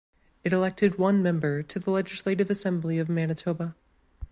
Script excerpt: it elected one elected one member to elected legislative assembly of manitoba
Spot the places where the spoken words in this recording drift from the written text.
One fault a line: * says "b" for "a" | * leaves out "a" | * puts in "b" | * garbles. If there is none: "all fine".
* leaves out "elected one"
* says "the" for "elected"